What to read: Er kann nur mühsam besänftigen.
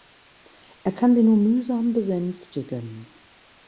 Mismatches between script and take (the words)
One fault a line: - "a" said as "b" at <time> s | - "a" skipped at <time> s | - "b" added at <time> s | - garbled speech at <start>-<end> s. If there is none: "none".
- "sie" added at 1.1 s